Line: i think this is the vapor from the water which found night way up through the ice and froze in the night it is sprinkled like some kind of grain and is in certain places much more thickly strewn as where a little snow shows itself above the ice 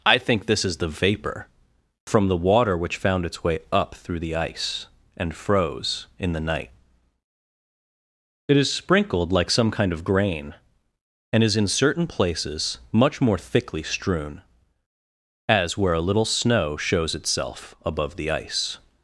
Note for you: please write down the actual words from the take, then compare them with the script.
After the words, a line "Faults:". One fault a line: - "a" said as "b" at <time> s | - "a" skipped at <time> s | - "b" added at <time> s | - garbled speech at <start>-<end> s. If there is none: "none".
i think this is the vapor from the water which found its way up through the ice and froze in the night it is sprinkled like some kind of grain and is in certain places much more thickly strewn as where a little snow shows itself above the ice
Faults:
- "night" said as "its" at 3.2 s